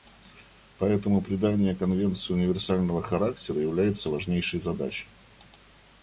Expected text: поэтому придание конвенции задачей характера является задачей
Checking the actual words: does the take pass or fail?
fail